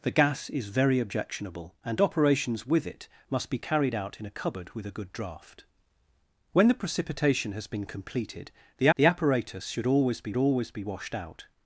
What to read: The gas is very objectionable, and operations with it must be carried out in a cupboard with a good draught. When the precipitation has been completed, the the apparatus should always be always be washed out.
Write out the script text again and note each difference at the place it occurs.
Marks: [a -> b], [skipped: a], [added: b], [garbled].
The gas is very objectionable, and operations with it must be carried out in a cupboard with a good draught. When the precipitation has been completed, the the apparatus should always be always be washed out.